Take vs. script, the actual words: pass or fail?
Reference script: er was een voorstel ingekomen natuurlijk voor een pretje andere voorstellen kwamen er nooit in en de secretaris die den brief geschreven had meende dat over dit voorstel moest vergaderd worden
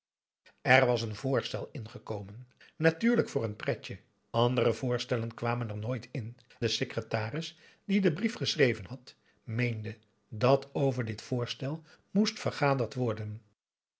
fail